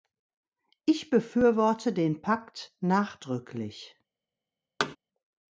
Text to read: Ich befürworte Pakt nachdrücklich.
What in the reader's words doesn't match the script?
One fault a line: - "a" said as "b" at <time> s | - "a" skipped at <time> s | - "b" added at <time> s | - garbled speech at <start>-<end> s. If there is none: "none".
- "den" added at 1.9 s